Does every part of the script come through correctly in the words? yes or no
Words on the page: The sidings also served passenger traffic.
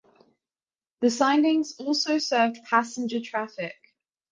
yes